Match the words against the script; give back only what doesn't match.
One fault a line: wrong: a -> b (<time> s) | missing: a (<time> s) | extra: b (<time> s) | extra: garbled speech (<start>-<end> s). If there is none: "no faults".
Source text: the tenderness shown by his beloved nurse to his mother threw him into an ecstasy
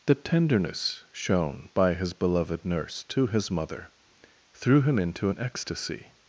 no faults